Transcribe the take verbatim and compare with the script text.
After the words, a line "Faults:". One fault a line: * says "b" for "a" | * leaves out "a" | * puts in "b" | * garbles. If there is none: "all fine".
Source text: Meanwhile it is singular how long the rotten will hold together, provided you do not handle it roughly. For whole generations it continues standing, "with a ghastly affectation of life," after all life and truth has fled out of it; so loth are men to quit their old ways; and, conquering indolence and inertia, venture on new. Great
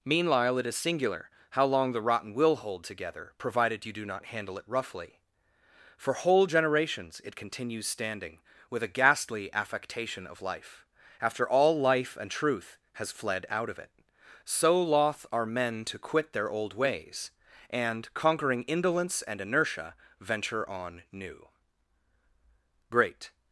Meanwhile it is singular how long the rotten will hold together, provided you do not handle it roughly. For whole generations it continues standing, "with a ghastly affectation of life," after all life and truth has fled out of it; so loth are men to quit their old ways; and, conquering indolence and inertia, venture on new. Great
Faults:
all fine